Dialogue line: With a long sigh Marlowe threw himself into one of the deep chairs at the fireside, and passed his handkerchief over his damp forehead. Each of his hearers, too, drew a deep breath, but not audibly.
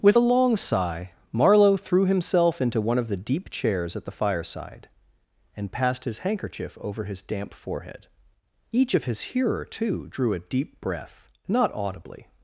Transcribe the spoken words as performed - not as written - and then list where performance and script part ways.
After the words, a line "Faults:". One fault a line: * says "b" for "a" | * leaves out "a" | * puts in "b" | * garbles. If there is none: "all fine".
With a long sigh Marlowe threw himself into one of the deep chairs at the fireside, and passed his handkerchief over his damp forehead. Each of his hearer, too, drew a deep breath, not audibly.
Faults:
* says "hearer" for "hearers"
* leaves out "but"